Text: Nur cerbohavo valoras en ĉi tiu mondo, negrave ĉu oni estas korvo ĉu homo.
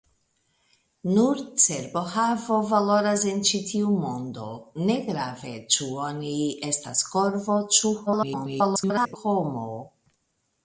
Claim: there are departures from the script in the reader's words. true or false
true